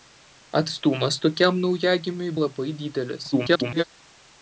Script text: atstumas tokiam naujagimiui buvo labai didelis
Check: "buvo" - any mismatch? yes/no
yes